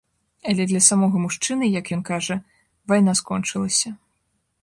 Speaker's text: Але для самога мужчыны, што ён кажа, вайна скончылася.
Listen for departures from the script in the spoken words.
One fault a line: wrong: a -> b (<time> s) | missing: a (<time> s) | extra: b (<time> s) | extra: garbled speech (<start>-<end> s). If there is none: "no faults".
wrong: што -> як (1.8 s)